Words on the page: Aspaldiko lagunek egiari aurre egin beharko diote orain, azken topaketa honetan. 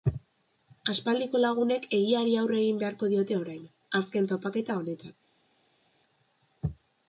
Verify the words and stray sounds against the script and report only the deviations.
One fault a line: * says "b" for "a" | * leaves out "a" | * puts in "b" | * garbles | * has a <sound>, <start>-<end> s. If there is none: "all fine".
all fine